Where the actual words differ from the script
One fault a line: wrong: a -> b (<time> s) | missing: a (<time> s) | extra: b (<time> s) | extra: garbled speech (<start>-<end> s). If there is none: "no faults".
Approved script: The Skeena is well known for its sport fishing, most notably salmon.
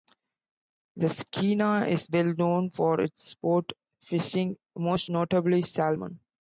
no faults